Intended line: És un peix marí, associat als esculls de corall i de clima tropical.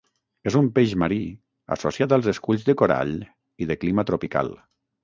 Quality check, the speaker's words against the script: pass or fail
pass